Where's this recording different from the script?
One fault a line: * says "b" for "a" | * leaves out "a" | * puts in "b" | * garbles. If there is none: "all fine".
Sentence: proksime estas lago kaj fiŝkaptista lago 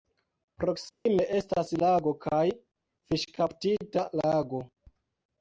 all fine